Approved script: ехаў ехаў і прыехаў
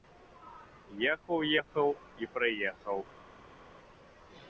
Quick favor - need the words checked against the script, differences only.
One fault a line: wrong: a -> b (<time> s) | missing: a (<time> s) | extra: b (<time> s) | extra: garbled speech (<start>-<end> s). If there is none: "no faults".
no faults